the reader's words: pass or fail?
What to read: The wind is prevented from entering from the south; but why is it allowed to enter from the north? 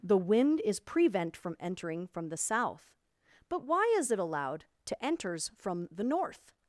fail